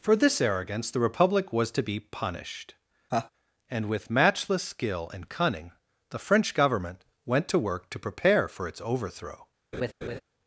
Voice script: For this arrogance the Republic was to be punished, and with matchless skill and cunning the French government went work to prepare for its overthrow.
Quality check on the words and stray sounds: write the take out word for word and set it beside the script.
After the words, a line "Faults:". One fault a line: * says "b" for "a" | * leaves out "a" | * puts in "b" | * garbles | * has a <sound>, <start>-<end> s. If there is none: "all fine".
For this arrogance the Republic was to be punished, and with matchless skill and cunning the French government went to work to prepare for its overthrow.
Faults:
* has a laugh, 3.1-3.3 s
* puts in "to"
* has a laugh, 9.7-10.2 s